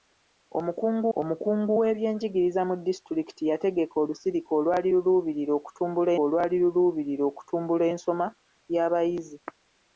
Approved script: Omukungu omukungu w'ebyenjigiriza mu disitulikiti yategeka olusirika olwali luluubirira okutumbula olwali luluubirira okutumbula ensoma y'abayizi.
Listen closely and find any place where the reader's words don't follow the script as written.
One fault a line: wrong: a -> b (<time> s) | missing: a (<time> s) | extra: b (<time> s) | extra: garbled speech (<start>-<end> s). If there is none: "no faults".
no faults